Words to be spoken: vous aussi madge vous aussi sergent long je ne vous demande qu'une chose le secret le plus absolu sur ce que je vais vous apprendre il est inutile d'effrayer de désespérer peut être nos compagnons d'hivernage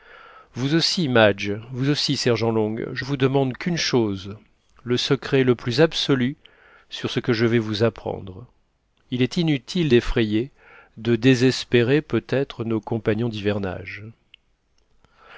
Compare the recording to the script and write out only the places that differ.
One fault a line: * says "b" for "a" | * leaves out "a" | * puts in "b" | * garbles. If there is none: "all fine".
* leaves out "ne"